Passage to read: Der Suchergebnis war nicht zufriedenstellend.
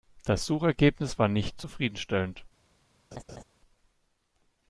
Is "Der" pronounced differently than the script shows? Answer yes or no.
yes